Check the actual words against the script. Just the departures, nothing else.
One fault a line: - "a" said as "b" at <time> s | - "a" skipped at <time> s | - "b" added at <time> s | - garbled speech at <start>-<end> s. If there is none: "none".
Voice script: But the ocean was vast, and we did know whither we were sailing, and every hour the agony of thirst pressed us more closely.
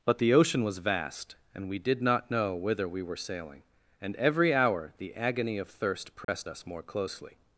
- "not" added at 2.0 s